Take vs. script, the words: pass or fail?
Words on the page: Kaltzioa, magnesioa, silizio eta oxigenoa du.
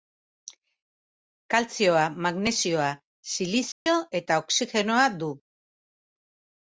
pass